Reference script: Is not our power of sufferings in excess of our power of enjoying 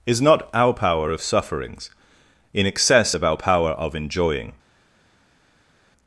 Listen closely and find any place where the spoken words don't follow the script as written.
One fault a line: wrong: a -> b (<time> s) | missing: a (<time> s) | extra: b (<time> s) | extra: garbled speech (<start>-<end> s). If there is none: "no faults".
no faults